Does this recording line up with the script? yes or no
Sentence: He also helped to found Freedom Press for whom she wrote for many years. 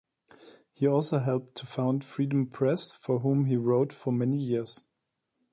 no